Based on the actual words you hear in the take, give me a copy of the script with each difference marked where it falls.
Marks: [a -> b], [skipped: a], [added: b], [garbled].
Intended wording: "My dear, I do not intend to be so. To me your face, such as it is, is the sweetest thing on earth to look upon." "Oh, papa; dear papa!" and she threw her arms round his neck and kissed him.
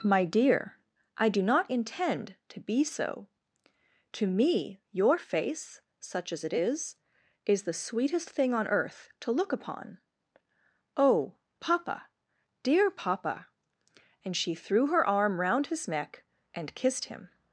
"My dear, I do not intend to be so. To me your face, such as it is, is the sweetest thing on earth to look upon." "Oh, papa; dear papa!" and she threw her [arms -> arm] round his neck and kissed him.